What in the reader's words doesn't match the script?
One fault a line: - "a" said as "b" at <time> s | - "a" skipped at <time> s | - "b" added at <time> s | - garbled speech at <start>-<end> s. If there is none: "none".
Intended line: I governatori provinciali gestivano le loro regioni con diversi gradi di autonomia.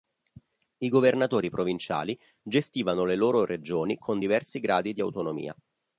none